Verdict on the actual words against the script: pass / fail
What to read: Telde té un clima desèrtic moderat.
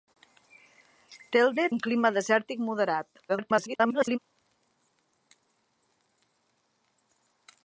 fail